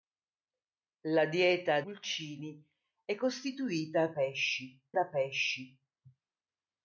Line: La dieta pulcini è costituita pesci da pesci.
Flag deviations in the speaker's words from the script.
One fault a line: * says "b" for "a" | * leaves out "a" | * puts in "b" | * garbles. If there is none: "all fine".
all fine